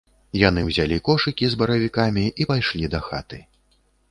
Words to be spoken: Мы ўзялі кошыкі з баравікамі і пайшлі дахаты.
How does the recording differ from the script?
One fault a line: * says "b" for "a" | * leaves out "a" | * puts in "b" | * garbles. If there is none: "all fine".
* says "Яны" for "Мы"